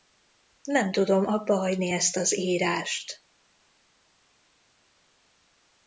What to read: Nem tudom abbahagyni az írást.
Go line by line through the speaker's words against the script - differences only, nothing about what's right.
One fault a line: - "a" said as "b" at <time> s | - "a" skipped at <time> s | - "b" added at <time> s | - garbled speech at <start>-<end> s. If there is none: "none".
- "ezt" added at 1.9 s